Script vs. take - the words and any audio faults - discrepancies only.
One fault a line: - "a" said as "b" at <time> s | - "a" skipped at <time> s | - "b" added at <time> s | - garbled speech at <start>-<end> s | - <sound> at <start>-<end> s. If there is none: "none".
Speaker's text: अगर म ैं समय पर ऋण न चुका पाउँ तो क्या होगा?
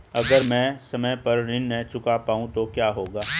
none